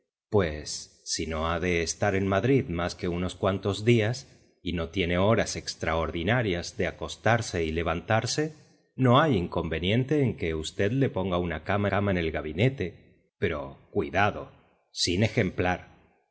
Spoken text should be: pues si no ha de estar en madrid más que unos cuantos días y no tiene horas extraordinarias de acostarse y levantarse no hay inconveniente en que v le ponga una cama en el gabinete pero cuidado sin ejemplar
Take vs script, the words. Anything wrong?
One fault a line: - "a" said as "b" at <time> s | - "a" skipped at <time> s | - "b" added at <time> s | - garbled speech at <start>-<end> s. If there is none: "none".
- "cama" added at 11.9 s